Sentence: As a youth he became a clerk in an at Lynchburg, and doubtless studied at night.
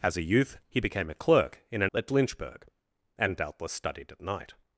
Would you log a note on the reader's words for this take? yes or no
no